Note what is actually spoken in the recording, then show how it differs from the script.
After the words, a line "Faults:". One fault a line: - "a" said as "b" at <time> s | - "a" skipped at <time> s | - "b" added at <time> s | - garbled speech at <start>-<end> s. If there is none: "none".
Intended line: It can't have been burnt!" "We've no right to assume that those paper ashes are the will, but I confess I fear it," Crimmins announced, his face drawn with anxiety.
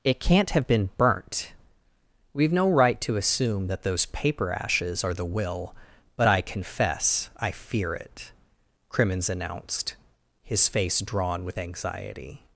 It can't have been burnt!" "We've no right to assume that those paper ashes are the will, but I confess I fear it," Crimmins announced, his face drawn with anxiety.
Faults:
none